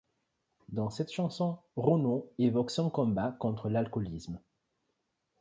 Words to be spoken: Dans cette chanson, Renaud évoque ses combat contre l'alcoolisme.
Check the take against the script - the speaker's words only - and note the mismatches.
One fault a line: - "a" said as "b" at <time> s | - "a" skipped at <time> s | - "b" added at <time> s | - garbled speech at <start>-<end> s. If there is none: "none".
- "ses" said as "son" at 2.7 s